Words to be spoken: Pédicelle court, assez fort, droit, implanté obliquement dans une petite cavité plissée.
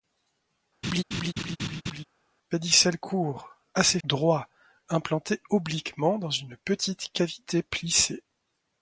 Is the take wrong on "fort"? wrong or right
wrong